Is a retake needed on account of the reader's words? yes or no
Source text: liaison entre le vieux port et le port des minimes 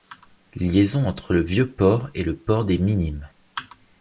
no